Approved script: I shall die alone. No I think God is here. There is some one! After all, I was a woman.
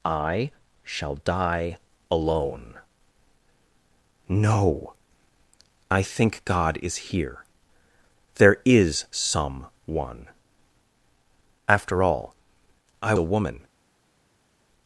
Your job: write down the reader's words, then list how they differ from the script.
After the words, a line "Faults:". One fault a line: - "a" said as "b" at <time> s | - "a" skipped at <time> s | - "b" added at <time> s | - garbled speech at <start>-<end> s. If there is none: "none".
I shall die alone. No I think God is here. There is some one! After all, I a woman.
Faults:
- "was" skipped at 13.1 s